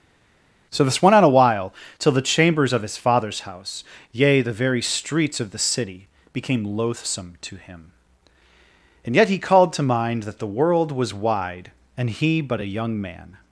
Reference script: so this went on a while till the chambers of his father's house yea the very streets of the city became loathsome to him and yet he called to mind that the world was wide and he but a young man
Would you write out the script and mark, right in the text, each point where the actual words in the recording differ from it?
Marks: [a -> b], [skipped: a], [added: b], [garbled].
so this went on a while till the chambers of his father's house yea the very streets of the city became loathsome to him and yet he called to mind that the world was wide and he but a young man